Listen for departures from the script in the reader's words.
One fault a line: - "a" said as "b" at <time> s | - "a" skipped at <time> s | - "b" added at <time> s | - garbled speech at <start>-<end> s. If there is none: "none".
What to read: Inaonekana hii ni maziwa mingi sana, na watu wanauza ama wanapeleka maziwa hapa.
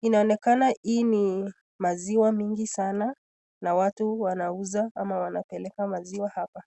none